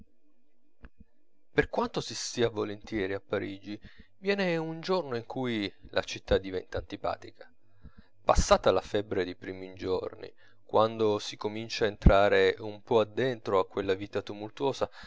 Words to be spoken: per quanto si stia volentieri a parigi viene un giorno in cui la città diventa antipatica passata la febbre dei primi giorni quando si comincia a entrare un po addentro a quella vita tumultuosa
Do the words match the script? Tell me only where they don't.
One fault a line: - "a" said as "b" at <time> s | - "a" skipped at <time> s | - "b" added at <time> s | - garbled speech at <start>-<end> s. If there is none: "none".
none